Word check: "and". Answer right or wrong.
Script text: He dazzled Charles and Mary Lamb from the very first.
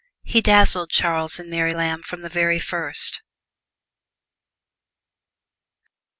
right